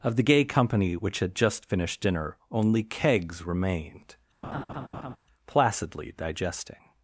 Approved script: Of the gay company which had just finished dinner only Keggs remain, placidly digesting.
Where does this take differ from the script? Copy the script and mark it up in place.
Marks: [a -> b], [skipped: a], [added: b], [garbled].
Of the gay company which had just finished dinner only Keggs [remain, -> remained] placidly digesting.